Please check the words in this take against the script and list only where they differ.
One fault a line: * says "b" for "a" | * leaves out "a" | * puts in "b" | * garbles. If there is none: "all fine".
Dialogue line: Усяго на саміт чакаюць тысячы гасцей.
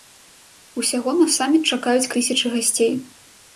all fine